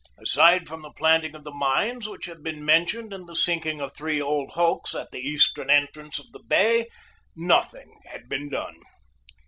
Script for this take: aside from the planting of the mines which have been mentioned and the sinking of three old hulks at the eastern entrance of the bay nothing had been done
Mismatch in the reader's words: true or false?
false